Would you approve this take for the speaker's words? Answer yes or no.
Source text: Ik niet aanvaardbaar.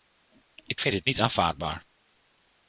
no